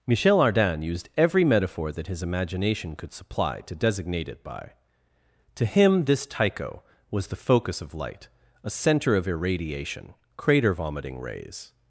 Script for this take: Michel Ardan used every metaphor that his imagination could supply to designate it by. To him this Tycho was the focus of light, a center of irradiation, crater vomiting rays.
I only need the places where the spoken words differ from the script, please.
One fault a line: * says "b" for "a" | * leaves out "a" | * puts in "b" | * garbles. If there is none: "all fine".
all fine